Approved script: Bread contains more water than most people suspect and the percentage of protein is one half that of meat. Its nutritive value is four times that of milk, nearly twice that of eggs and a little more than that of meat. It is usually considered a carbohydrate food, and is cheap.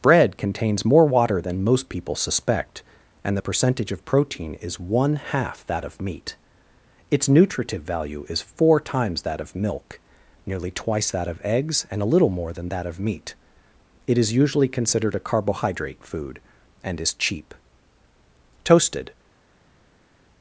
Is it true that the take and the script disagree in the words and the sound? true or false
true